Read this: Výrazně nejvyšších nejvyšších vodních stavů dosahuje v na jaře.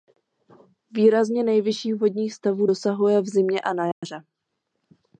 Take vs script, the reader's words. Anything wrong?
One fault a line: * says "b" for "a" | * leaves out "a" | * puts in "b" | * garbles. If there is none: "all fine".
* leaves out "nejvyšších"
* puts in "zimě a"